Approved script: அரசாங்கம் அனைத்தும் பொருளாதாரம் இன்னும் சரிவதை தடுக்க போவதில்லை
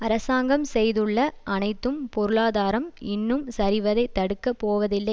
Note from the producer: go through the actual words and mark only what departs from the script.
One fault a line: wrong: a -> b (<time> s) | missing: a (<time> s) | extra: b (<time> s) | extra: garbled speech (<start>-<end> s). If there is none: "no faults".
extra: செய்துள்ள (0.7 s)